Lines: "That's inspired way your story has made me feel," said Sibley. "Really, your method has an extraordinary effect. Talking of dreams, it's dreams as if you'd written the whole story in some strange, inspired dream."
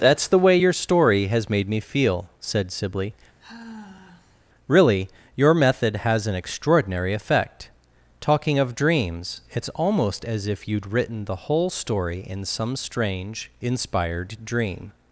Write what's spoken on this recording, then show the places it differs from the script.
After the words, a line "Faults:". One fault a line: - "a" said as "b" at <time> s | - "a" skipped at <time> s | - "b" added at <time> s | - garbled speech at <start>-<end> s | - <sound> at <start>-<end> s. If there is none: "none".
"That's the way your story has made me feel," said Sibley. "Really, your method has an extraordinary effect. Talking of dreams, it's almost as if you'd written the whole story in some strange, inspired dream."
Faults:
- "inspired" said as "the" at 0.3 s
- sigh at 3.4-4.4 s
- "dreams" said as "almost" at 9.7 s